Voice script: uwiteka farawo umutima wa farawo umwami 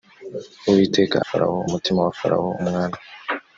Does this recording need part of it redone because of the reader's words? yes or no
no